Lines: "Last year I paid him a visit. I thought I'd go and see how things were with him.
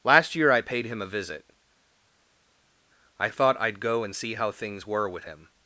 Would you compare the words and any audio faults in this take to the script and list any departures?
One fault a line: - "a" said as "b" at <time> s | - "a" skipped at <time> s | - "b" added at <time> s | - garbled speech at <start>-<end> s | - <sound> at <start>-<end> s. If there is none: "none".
none